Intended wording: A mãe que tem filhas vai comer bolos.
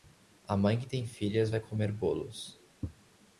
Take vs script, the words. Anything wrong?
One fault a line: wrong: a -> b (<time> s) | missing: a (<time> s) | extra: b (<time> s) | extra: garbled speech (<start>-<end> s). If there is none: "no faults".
no faults